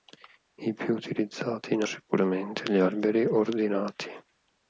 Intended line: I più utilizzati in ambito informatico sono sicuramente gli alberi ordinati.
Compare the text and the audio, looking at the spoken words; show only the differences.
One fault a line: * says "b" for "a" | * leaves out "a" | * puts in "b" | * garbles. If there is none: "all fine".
* leaves out "ambito informatico sono"